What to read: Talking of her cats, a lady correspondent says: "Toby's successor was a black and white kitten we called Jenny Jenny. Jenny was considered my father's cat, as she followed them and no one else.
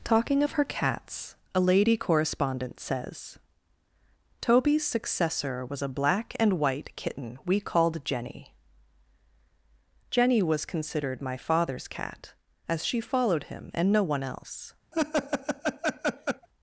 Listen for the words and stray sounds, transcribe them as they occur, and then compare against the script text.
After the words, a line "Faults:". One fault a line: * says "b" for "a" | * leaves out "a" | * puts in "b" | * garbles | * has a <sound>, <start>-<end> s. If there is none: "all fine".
Talking of her cats, a lady correspondent says: "Toby's successor was a black and white kitten we called Jenny. Jenny was considered my father's cat, as she followed him and no one else.
Faults:
* leaves out "Jenny"
* says "him" for "them"
* has a laugh, 14.9-16.5 s